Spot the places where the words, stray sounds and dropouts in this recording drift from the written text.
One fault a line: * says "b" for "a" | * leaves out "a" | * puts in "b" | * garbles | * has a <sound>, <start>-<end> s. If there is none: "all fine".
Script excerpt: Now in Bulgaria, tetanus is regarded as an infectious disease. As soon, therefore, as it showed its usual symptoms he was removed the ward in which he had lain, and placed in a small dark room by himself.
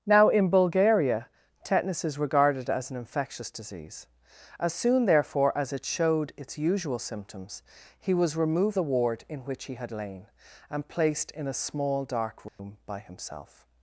* has a dropout, 12.5-12.6 s